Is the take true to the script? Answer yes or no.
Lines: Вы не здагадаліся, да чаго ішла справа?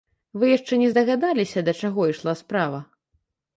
no